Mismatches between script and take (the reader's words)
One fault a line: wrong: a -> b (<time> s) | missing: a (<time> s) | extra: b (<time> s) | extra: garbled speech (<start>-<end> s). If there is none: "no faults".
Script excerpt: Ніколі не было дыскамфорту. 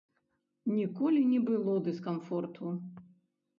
no faults